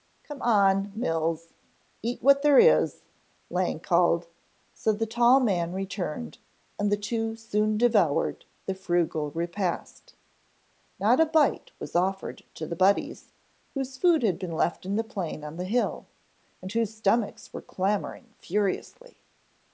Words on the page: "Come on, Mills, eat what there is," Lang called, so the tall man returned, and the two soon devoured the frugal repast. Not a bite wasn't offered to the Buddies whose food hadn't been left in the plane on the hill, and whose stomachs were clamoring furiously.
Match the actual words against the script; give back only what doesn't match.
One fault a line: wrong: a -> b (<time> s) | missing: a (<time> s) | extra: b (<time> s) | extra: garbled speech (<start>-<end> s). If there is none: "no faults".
wrong: wasn't -> was (11.8 s)
wrong: hadn't -> had (14.2 s)